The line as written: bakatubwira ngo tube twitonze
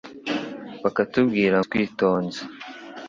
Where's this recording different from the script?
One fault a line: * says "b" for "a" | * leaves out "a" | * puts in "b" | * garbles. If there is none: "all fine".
* leaves out "ngo tube"